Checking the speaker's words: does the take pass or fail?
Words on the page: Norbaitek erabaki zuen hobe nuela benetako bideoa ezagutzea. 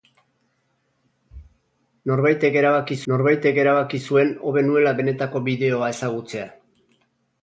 fail